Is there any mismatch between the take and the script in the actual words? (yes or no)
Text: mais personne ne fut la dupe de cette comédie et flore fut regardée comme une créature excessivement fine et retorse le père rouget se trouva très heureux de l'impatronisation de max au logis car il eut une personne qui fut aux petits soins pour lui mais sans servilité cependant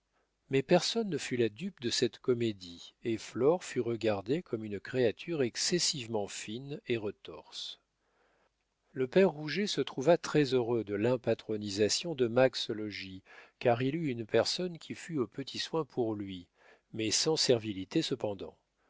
no